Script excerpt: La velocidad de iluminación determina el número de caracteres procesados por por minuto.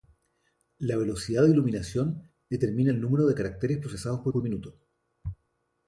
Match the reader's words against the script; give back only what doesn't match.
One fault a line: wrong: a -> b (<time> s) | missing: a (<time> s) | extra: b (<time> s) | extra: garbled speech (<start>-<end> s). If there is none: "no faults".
no faults